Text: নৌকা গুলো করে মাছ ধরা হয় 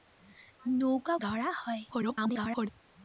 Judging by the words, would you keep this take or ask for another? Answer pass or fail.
fail